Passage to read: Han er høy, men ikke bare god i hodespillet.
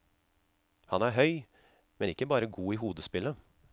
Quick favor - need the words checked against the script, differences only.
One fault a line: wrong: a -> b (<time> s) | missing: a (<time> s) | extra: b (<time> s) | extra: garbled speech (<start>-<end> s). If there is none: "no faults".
no faults